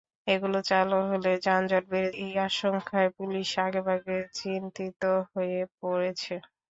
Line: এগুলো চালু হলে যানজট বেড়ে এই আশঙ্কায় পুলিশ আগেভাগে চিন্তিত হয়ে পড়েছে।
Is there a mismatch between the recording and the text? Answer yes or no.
no